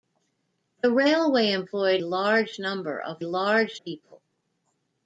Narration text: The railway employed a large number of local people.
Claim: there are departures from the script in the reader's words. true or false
true